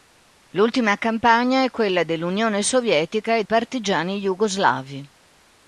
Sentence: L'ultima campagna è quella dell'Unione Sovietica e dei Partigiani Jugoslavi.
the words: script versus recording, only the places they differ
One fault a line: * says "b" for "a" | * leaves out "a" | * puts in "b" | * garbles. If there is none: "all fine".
* leaves out "dei"